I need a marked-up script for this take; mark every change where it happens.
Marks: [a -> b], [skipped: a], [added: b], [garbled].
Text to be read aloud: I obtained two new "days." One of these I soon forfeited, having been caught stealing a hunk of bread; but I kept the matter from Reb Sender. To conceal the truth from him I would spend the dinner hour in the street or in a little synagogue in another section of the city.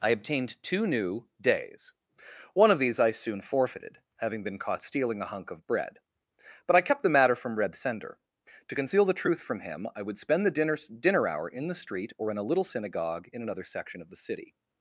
I obtained two new "days." One of these I soon forfeited, having been caught stealing a hunk of bread; but I kept the matter from Reb Sender. To conceal the truth from him I would spend the dinner [added: dinner] hour in the street or in a little synagogue in another section of the city.